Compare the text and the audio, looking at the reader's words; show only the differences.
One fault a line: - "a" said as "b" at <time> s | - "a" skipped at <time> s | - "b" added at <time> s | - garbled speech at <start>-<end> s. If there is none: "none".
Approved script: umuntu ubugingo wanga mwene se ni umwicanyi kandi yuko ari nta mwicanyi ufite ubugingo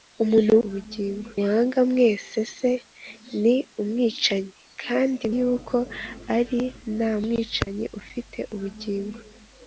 none